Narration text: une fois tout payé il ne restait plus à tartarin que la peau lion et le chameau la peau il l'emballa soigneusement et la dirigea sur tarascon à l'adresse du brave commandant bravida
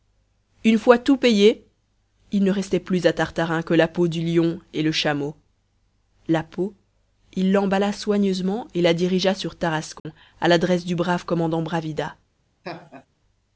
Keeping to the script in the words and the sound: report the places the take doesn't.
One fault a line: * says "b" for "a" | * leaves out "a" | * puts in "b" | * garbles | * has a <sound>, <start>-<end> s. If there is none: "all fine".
* puts in "du"
* has a dropout, 10.0-10.1 s
* has a laugh, 12.6-13.1 s